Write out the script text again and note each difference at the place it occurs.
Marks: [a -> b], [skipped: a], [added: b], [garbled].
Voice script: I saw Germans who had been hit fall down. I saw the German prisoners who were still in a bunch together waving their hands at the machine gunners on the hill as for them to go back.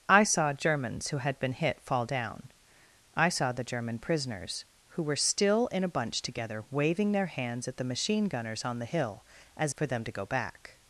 I saw Germans who had been hit fall down. I saw the German prisoners who were still in a bunch together waving their hands at the machine gunners on the hill as for them to go back.